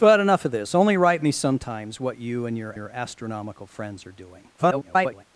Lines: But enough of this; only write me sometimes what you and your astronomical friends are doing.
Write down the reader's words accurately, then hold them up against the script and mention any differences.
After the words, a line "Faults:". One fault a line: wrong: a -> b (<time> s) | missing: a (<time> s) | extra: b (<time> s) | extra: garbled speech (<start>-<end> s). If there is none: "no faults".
But enough of this; only write me sometimes what you and your your astronomical friends are doing. [garbled]
Faults:
extra: your (2.7 s)
extra: garbled speech (4.6-5.2 s)